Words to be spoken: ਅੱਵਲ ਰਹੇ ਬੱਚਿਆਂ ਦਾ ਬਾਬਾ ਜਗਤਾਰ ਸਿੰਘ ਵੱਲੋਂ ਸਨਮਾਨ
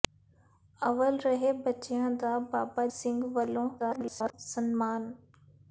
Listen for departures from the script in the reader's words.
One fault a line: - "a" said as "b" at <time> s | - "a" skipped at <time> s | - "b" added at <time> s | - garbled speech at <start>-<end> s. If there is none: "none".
- "ਜਗਤਾਰ" skipped at 2.9 s
- garbled speech at 3.8-4.3 s